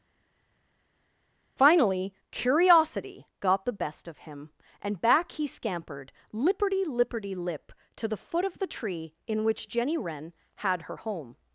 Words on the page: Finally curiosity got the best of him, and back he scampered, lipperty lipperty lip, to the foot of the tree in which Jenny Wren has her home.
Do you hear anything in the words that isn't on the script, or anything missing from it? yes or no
yes